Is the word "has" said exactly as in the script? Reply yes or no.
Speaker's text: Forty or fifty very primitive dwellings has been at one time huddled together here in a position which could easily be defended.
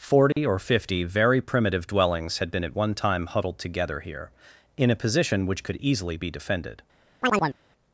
no